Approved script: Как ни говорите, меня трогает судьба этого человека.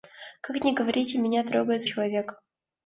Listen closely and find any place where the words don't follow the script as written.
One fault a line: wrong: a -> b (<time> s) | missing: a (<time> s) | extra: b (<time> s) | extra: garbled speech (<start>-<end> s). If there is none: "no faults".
missing: судьба этого (1.8 s)